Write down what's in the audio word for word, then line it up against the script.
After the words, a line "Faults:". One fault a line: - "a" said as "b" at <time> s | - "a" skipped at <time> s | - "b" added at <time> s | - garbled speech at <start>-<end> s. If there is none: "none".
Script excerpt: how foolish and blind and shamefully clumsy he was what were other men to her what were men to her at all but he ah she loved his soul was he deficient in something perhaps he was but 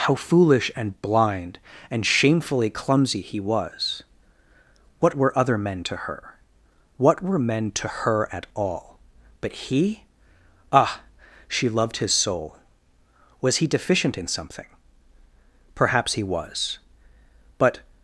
how foolish and blind and shamefully clumsy he was what were other men to her what were men to her at all but he ah she loved his soul was he deficient in something perhaps he was but
Faults:
none